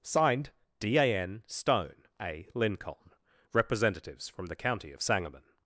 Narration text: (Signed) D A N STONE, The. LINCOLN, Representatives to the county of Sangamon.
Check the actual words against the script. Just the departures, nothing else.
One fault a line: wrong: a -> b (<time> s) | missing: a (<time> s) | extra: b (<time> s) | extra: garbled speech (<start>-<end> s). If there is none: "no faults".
wrong: The -> A (2.2 s)
wrong: to -> from (4.3 s)